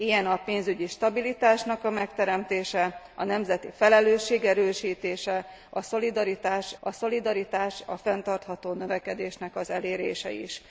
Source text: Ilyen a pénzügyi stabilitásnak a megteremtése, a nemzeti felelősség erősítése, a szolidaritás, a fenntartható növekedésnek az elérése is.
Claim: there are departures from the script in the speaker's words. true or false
true